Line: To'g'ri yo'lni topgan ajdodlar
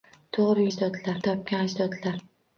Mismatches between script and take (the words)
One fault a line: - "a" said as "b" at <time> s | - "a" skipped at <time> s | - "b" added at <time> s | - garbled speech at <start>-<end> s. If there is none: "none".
- "yo'lni" said as "ajdodlar" at 0.7 s